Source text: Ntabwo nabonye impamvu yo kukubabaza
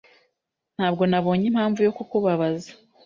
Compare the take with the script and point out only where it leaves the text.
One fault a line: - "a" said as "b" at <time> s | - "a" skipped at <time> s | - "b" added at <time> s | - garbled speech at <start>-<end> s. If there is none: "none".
none